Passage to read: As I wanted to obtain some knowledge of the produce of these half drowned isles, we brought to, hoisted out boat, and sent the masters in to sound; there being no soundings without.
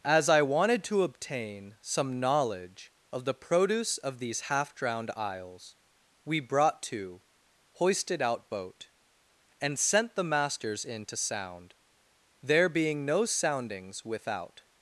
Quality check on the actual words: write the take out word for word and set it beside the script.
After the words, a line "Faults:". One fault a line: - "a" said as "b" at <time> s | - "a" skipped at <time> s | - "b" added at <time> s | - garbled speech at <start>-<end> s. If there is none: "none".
As I wanted to obtain some knowledge of the produce of these half drowned isles, we brought to, hoisted out boat, and sent the masters in to sound; there being no soundings without.
Faults:
none